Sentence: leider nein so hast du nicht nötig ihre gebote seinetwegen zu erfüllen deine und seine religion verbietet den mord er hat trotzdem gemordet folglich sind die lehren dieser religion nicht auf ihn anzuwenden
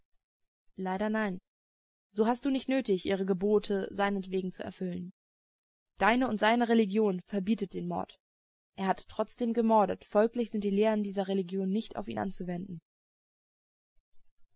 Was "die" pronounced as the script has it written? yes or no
yes